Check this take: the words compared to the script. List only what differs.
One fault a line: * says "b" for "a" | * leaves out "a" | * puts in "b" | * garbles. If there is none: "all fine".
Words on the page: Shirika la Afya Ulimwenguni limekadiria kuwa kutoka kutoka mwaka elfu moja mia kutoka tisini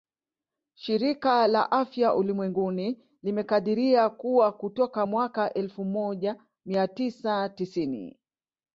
* leaves out "kutoka"
* says "tisa" for "kutoka"